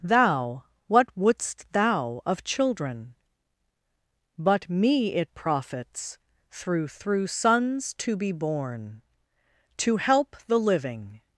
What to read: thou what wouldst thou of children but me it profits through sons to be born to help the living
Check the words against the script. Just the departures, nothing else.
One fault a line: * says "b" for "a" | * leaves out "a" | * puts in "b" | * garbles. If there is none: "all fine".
* puts in "through"